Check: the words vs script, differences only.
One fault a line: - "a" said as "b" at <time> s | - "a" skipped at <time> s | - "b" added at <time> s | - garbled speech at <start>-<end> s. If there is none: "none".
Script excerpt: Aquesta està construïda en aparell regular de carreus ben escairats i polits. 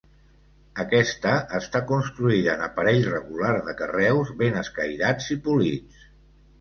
none